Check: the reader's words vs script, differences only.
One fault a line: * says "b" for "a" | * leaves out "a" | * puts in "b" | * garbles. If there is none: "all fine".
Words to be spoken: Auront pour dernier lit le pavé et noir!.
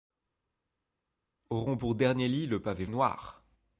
all fine